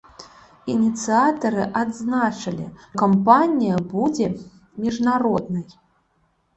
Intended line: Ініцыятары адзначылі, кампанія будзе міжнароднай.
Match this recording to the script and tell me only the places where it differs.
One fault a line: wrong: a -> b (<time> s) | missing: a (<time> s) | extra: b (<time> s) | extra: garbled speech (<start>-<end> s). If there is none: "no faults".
no faults